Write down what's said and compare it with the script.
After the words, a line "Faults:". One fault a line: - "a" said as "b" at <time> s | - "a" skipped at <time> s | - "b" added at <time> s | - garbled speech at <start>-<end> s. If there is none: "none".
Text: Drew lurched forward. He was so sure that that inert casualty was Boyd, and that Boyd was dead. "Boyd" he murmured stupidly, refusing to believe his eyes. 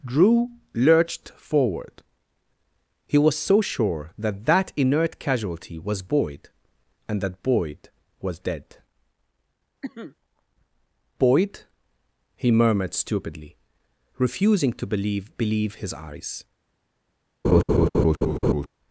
Drew lurched forward. He was so sure that that inert casualty was Boyd, and that Boyd was dead. "Boyd" he murmured stupidly, refusing to believe believe his eyes.
Faults:
- "believe" added at 15.4 s